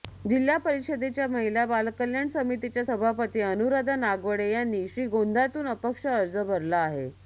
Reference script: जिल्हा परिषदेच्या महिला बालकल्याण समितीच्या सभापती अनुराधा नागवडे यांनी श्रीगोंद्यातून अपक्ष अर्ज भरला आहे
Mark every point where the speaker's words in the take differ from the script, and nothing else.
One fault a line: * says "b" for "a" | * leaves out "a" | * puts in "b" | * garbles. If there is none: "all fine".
all fine